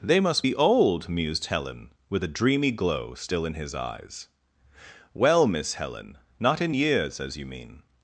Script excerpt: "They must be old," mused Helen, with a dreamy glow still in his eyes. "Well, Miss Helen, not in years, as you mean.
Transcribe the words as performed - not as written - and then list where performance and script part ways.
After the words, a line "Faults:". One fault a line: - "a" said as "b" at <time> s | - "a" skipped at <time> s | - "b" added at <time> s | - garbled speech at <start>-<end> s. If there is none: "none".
"They must be old," mused Helen, with a dreamy glow still in his eyes. "Well, Miss Helen, not in years, as you mean.
Faults:
none